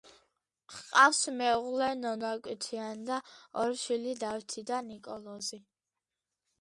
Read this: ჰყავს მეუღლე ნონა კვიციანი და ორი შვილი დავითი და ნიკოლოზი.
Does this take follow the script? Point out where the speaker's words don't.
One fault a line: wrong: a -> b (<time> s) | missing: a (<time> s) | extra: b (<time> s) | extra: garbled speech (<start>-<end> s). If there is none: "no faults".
no faults